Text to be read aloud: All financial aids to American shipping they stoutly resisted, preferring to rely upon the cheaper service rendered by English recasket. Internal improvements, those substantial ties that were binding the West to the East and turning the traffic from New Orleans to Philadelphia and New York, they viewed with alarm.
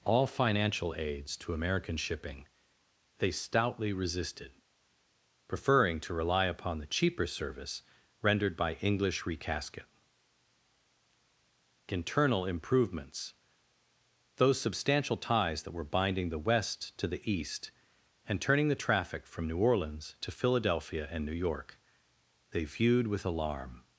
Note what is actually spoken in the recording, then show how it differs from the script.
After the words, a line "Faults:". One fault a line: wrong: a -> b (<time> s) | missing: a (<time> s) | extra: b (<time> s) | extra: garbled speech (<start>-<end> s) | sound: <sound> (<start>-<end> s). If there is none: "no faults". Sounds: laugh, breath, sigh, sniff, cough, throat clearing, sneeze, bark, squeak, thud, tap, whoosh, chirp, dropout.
All financial aids to American shipping they stoutly resisted, preferring to rely upon the cheaper service rendered by English recasket. Internal improvements, those substantial ties that were binding the West to the East and turning the traffic from New Orleans to Philadelphia and New York, they viewed with alarm.
Faults:
no faults